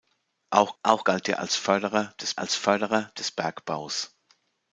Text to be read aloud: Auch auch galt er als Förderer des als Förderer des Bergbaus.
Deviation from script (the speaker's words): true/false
false